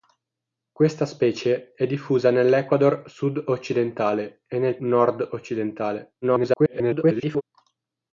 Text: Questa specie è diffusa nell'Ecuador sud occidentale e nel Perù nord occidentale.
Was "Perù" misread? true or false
true